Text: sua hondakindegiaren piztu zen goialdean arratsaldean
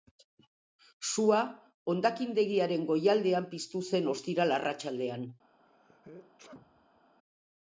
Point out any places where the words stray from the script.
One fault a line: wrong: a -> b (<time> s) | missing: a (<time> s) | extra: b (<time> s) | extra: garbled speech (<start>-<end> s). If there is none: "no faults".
extra: goialdean (2.9 s)
wrong: goialdean -> ostiral (4.2 s)